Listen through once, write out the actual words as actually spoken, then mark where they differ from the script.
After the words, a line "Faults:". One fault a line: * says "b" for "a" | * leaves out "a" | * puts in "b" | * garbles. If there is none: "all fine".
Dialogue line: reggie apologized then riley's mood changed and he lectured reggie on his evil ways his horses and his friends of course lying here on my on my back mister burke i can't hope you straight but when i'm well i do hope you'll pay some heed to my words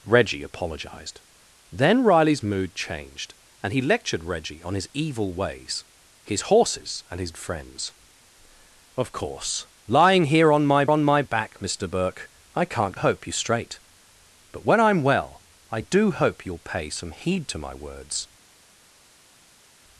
reggie apologized then riley's mood changed and he lectured reggie on his evil ways his horses and his friends of course lying here on my on my back mister burke i can't hope you straight but when i'm well i do hope you'll pay some heed to my words
Faults:
all fine